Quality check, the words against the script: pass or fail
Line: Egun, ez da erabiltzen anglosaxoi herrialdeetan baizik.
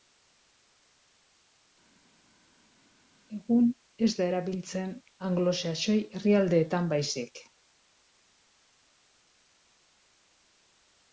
pass